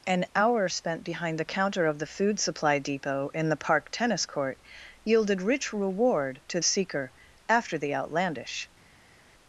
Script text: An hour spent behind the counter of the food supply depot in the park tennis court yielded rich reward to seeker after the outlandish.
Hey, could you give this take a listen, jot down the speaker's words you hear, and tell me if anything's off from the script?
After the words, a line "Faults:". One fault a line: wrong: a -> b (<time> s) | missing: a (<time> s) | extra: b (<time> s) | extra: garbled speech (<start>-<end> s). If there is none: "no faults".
An hour spent behind the counter of the food supply depot in the park tennis court yielded rich reward to seeker after the outlandish.
Faults:
no faults